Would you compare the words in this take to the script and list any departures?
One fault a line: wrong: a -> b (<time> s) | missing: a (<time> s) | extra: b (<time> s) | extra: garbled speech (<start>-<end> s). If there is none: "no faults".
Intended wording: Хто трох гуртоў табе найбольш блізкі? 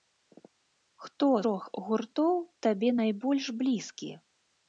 no faults